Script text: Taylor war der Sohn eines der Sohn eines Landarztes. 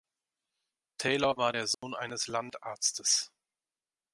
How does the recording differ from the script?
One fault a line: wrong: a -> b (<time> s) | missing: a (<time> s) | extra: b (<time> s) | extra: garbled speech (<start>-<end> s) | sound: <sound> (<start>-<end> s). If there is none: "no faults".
sound: dropout (1.7-1.8 s)
missing: der Sohn eines (2.3 s)